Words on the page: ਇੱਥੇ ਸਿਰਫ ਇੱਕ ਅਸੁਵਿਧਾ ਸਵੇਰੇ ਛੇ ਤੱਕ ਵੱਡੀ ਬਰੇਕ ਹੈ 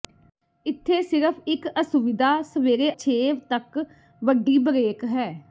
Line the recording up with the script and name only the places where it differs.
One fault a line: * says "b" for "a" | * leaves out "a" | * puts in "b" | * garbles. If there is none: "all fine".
all fine